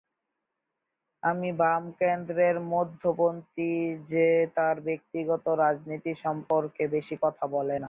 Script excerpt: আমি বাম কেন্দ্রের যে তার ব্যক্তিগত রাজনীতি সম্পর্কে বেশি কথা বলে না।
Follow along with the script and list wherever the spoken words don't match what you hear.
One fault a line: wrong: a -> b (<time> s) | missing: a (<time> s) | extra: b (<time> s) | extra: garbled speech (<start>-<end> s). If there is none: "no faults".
extra: মধ্যপন্থী (2.7 s)